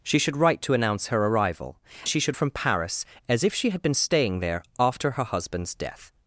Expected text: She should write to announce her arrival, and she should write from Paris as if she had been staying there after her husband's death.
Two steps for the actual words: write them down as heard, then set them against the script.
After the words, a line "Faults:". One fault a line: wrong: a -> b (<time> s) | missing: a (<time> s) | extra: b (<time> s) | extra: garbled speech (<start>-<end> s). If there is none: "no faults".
She should write to announce her arrival, she should from Paris as if she had been staying there after her husband's death.
Faults:
missing: and (1.8 s)
missing: write (2.4 s)